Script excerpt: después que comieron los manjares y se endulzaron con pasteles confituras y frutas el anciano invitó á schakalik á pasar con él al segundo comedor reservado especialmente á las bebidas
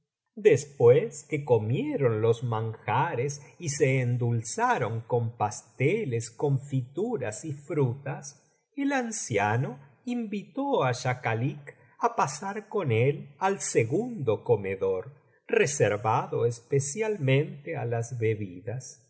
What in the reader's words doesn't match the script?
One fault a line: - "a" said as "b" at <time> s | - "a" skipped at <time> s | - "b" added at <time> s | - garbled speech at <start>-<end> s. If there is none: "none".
none